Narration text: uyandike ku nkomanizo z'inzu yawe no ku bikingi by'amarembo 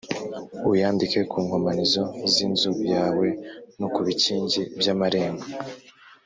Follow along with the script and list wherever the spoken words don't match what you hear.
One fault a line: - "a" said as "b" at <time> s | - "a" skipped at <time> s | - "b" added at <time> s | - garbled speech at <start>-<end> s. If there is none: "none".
none